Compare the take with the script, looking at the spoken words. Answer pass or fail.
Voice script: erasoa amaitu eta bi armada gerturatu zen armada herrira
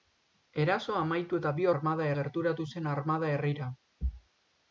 pass